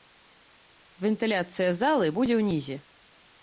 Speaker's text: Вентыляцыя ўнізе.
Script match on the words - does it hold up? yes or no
no